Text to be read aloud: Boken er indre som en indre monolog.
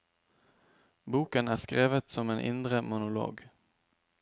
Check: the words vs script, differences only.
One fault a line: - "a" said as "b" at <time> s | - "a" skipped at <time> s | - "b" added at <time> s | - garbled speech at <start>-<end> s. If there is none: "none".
- "indre" said as "skrevet" at 1.6 s